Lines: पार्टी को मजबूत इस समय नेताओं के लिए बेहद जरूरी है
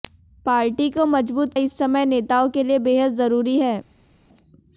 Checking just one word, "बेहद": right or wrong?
right